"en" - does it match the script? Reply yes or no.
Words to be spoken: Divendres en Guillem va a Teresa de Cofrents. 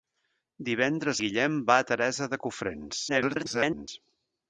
no